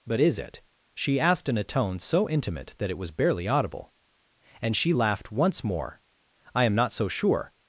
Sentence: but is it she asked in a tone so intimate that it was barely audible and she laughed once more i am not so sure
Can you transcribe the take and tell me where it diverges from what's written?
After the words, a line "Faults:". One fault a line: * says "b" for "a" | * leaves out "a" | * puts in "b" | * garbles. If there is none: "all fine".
but is it she asked in a tone so intimate that it was barely audible and she laughed once more i am not so sure
Faults:
all fine